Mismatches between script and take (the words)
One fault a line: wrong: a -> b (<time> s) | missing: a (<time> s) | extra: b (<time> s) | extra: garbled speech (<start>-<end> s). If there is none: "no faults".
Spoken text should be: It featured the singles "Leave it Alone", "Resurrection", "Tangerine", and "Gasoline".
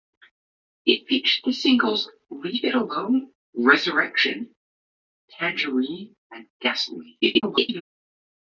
extra: garbled speech (7.2-7.8 s)